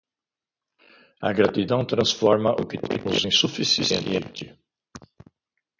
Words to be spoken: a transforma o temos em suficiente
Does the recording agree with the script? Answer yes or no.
no